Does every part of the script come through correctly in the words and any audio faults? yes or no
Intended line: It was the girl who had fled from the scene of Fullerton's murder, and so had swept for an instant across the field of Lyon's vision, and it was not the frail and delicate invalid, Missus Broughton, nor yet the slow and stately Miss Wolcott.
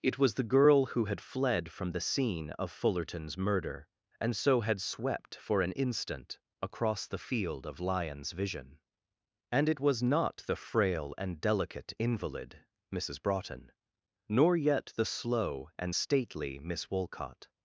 yes